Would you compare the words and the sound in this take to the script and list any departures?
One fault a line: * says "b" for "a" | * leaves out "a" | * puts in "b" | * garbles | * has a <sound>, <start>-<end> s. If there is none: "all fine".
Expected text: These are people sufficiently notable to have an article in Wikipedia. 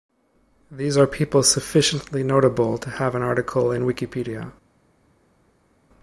all fine